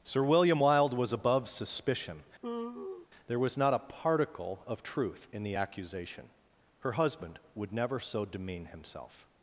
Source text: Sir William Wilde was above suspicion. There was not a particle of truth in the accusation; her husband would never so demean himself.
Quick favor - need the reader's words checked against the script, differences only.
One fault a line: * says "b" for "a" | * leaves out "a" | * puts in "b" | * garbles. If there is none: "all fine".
all fine